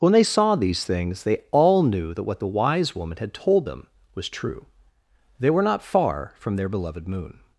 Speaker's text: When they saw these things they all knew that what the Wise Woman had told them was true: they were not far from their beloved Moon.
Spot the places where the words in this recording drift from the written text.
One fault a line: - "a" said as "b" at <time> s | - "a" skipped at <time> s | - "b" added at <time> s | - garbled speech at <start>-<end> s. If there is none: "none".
none